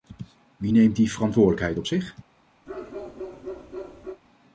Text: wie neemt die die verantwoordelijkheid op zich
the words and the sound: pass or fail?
fail